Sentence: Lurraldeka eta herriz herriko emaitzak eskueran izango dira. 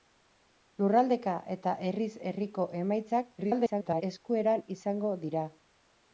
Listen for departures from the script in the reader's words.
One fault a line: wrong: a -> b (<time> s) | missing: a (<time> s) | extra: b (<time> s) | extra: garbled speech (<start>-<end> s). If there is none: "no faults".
extra: garbled speech (3.4-4.0 s)